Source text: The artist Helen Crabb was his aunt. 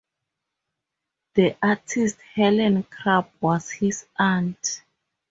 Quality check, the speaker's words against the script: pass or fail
pass